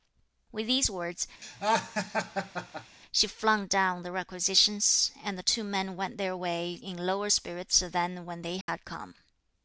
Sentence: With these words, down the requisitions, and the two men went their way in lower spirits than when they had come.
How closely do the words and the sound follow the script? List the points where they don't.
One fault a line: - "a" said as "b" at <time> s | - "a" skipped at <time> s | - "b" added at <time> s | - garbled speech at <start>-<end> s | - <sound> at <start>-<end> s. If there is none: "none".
- laugh at 1.4-3.0 s
- "she flung" added at 3.1 s
- dropout at 8.6-8.7 s